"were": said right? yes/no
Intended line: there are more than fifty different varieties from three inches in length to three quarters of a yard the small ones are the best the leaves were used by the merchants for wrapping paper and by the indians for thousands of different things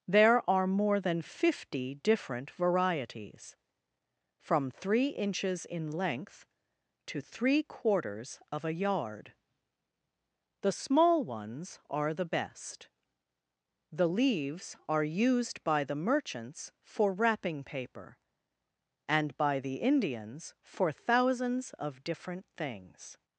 no